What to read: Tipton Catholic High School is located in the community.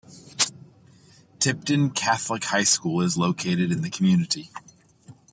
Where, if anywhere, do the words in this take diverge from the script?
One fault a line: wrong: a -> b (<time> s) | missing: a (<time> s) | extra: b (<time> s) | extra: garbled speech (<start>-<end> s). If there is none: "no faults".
no faults